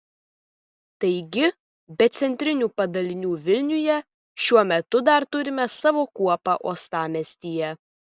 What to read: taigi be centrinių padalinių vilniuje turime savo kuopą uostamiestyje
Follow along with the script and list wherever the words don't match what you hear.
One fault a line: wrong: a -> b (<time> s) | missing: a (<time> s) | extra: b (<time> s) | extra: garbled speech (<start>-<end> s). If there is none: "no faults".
extra: šiuo metu dar (4.5 s)